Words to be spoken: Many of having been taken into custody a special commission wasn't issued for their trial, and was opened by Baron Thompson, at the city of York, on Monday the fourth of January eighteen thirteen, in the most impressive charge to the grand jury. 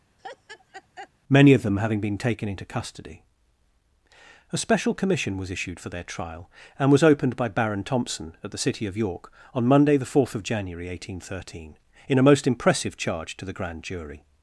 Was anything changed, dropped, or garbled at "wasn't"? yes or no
yes